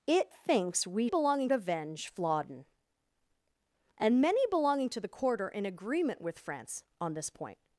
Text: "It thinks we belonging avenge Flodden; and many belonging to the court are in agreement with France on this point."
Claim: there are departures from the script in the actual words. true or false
false